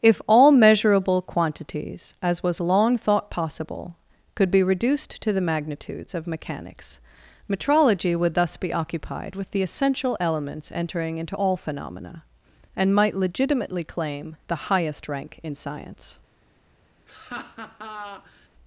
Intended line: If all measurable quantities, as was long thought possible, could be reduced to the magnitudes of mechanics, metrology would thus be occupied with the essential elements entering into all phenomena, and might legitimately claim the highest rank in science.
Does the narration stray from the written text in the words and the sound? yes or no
yes